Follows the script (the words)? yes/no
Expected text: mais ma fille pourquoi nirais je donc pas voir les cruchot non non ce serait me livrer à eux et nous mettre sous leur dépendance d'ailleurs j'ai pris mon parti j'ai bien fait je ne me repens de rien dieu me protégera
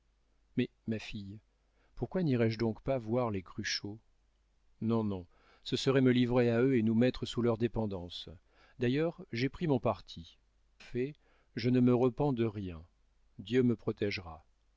no